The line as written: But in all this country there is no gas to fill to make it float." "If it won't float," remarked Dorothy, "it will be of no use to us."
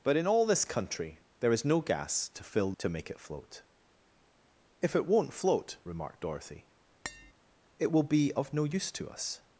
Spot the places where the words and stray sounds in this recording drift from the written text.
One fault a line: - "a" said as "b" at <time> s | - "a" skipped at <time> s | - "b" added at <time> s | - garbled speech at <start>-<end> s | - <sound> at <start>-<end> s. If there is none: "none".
- tap at 7.0-7.3 s